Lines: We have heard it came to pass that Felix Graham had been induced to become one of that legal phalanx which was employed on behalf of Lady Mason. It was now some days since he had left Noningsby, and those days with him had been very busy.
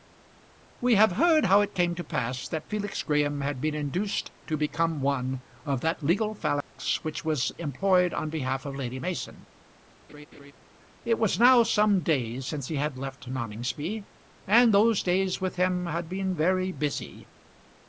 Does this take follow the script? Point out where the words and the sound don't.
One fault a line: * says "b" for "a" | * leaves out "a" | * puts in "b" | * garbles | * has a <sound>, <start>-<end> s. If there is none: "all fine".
* puts in "how"
* has a dropout, 6.6-6.7 s
* has a laugh, 10.1-10.5 s